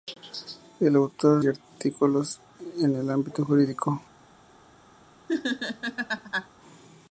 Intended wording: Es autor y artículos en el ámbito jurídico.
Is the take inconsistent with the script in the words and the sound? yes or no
yes